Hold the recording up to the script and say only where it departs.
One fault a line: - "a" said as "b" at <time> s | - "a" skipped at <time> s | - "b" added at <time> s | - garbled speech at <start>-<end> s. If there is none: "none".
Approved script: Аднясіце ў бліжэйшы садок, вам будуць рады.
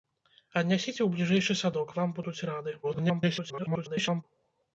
- garbled speech at 2.8-4.2 s